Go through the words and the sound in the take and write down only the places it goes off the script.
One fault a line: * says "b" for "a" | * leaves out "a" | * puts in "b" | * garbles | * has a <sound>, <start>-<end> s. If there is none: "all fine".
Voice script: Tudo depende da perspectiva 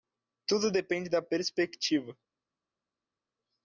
all fine